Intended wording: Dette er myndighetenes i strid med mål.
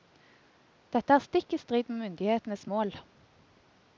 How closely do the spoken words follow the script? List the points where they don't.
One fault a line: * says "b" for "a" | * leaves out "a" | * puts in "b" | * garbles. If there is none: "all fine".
* says "stikk" for "myndighetenes"
* puts in "myndighetenes"